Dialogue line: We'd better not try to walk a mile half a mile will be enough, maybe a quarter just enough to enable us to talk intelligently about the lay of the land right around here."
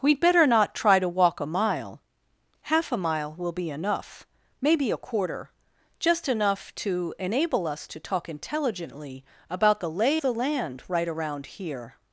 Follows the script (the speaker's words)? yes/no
no